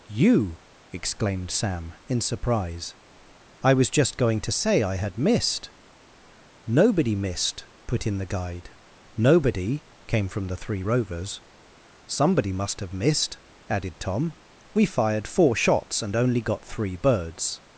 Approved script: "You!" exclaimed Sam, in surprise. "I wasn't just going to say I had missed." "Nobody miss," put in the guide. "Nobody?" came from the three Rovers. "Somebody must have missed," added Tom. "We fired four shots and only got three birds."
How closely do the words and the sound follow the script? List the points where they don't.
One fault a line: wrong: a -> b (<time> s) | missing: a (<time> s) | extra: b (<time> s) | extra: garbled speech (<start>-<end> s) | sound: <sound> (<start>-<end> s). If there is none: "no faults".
wrong: wasn't -> was (3.7 s)
wrong: miss -> missed (7.2 s)